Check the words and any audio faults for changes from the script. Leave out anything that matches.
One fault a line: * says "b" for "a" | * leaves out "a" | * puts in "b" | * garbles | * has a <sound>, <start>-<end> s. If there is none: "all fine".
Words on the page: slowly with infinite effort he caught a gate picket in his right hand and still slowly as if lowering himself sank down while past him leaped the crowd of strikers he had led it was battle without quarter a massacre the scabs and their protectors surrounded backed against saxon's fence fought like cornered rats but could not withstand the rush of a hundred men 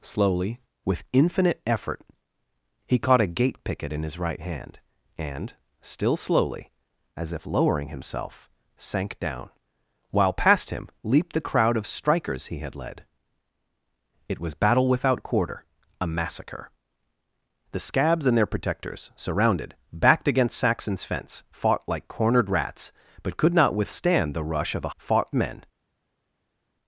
* says "fought" for "hundred"